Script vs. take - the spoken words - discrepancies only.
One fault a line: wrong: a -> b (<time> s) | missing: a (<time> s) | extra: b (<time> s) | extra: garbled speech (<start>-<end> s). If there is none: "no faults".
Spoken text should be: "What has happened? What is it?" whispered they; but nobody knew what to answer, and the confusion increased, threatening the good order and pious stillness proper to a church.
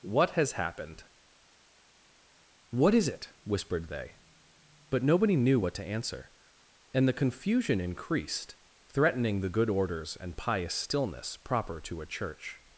wrong: order -> orders (9.7 s)